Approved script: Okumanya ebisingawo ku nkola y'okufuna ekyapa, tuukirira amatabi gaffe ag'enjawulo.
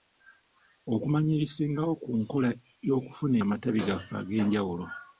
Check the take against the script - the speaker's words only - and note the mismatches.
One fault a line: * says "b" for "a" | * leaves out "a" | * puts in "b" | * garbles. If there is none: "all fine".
* leaves out "ekyapa tuukirira"